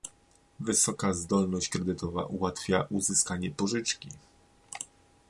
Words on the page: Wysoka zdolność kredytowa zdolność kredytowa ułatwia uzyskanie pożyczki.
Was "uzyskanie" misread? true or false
false